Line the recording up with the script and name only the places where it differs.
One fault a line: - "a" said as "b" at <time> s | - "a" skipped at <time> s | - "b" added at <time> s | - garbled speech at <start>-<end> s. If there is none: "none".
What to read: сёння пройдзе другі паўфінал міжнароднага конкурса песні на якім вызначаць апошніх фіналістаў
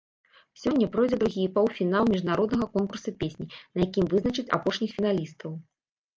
none